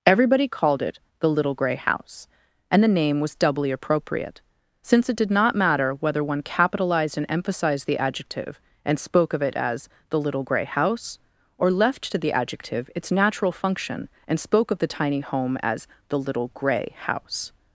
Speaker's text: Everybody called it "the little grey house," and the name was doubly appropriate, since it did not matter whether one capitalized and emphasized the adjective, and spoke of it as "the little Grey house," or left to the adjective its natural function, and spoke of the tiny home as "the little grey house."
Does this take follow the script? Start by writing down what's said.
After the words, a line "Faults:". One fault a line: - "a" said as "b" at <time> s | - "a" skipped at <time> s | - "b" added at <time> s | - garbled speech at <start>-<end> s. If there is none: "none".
Everybody called it "the little grey house," and the name was doubly appropriate, since it did not matter whether one capitalized and emphasized the adjective, and spoke of it as "the little Grey house," or left to the adjective its natural function, and spoke of the tiny home as "the little grey house."
Faults:
none